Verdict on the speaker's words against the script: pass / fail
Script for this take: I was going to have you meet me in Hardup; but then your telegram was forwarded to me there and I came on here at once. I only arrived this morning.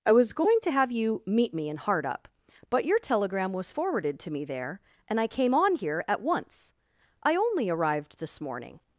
fail